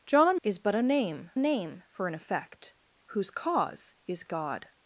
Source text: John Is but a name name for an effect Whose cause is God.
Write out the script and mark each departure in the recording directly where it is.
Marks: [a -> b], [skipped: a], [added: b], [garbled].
John Is but a name name for an effect Whose cause is God.